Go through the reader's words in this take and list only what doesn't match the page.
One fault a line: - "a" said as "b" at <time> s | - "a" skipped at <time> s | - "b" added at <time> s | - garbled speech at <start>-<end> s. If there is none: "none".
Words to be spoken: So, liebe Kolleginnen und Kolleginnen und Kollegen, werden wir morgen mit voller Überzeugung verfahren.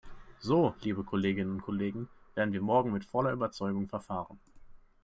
- "Kolleginnen und" skipped at 1.6 s